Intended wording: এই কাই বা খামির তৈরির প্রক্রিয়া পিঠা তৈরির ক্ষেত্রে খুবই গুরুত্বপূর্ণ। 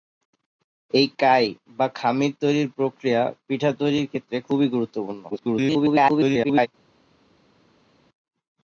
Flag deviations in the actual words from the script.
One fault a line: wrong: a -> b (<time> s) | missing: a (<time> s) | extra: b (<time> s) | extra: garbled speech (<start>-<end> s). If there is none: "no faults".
extra: garbled speech (5.3-6.7 s)